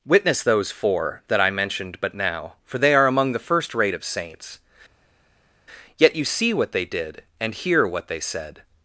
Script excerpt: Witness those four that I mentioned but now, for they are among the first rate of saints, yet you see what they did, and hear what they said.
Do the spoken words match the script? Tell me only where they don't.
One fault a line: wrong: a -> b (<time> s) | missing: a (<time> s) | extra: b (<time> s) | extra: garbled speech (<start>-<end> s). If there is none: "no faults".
no faults